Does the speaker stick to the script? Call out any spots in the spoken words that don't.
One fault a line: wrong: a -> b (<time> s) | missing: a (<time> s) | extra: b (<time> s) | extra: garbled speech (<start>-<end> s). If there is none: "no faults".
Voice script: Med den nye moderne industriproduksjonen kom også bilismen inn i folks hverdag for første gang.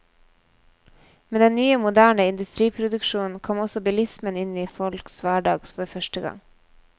no faults